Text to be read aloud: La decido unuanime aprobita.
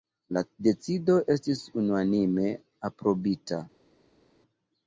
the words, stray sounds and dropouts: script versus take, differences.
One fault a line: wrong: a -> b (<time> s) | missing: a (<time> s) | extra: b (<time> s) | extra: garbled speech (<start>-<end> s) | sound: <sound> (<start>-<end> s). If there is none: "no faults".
extra: estis (1.4 s)